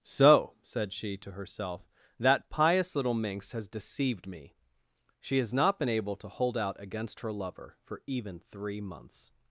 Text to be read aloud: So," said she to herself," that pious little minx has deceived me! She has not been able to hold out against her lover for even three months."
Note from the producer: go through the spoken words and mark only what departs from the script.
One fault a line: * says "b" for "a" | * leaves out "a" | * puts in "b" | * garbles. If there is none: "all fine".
all fine